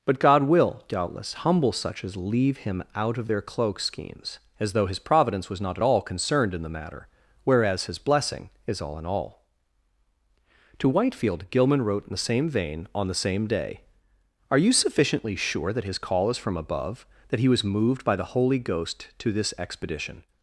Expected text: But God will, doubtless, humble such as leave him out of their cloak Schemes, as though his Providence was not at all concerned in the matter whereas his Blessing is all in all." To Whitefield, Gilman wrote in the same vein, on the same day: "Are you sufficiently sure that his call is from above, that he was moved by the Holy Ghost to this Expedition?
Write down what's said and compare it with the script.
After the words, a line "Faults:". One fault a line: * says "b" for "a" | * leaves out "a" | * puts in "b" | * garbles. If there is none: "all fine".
But God will, doubtless, humble such as leave him out of their cloak Schemes, as though his Providence was not at all concerned in the matter whereas his Blessing is all in all." To Whitefield, Gilman wrote in the same vein, on the same day: "Are you sufficiently sure that his call is from above, that he was moved by the Holy Ghost to this Expedition?
Faults:
all fine